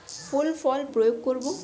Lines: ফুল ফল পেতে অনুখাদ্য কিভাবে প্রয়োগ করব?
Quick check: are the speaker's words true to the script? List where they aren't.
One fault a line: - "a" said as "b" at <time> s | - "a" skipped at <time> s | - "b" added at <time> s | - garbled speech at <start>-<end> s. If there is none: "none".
- "পেতে অনুখাদ্য কিভাবে" skipped at 0.8 s